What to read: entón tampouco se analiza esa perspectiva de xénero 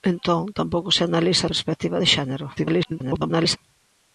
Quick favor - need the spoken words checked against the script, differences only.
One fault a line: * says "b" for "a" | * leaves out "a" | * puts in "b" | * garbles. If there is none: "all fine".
* leaves out "esa"
* garbles